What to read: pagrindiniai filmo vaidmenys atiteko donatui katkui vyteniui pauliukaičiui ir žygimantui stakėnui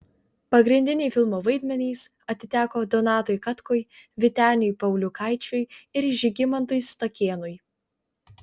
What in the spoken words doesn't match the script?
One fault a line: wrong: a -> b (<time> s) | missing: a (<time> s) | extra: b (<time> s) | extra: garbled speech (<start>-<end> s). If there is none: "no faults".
no faults